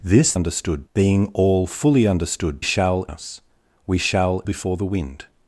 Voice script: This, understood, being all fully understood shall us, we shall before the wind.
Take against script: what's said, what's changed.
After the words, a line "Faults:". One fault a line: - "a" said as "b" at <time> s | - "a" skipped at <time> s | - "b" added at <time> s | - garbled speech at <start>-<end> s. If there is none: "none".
This, understood, being all fully understood shall us, we shall before the wind.
Faults:
none